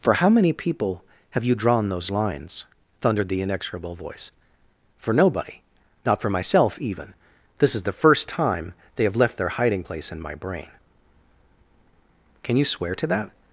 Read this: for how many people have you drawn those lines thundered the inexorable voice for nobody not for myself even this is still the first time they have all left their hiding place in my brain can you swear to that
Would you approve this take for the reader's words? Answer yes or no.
no